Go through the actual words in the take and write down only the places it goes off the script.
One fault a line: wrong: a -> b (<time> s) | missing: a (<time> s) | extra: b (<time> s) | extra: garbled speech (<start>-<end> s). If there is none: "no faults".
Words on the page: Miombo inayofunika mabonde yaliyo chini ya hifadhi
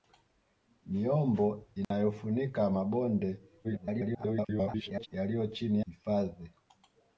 extra: garbled speech (3.6-5.1 s)
missing: ya (5.8 s)